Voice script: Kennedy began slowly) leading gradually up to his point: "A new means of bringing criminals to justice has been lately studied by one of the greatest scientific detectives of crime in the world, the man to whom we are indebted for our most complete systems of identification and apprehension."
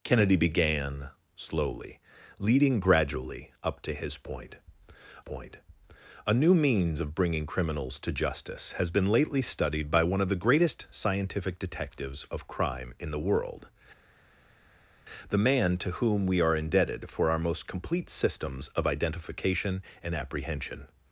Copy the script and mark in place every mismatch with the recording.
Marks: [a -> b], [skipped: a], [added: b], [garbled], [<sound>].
Kennedy began slowly) leading gradually up to his point: [added: point] "A new means of bringing criminals to justice has been lately studied by one of the greatest scientific detectives of crime in the world, the man to whom we are indebted for our most complete systems of identification and apprehension."